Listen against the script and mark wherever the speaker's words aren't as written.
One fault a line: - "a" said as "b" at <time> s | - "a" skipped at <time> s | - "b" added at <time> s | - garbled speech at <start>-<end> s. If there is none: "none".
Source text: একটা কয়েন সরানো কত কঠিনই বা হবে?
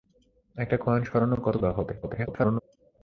- "কঠিনই" skipped at 1.6 s
- garbled speech at 2.0-2.6 s